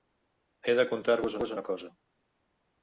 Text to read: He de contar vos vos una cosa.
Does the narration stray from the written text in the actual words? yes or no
no